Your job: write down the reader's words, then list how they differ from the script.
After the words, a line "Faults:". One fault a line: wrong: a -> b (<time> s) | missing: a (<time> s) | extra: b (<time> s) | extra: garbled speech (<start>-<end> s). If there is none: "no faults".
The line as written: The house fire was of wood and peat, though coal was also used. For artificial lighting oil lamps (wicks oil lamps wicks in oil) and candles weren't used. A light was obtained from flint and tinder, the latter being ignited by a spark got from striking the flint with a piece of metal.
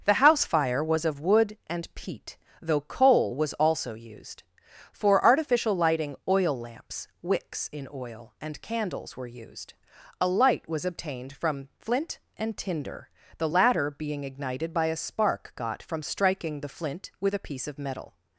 The house fire was of wood and peat, though coal was also used. For artificial lighting oil lamps (wicks in oil) and candles were used. A light was obtained from flint and tinder, the latter being ignited by a spark got from striking the flint with a piece of metal.
Faults:
missing: oil lamps wicks (7.7 s)
wrong: weren't -> were (9.2 s)